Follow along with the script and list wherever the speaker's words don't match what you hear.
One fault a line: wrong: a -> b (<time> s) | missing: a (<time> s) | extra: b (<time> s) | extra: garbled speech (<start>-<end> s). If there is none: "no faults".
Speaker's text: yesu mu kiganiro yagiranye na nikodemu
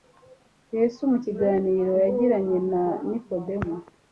no faults